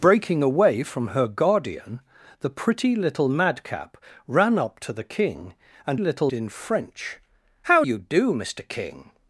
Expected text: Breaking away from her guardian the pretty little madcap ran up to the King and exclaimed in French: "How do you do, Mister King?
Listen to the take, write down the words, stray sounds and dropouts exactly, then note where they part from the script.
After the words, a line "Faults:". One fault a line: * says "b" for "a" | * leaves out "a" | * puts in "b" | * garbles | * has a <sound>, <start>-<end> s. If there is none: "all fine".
Breaking away from her guardian the pretty little madcap ran up to the King and little in French: "How you do, Mister King?
Faults:
* says "little" for "exclaimed"
* leaves out "do"